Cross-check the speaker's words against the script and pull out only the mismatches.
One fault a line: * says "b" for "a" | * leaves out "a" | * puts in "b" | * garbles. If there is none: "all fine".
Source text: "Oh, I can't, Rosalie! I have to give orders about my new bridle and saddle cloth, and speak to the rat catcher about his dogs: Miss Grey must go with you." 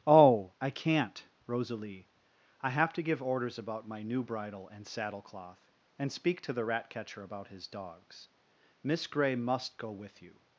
all fine